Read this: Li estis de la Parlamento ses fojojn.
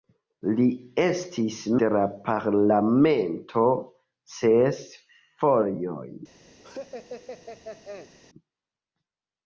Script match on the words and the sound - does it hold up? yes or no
no